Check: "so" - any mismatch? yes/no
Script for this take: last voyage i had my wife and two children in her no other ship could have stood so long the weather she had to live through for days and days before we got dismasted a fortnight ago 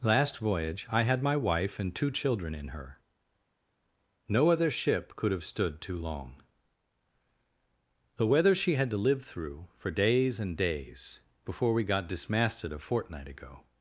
yes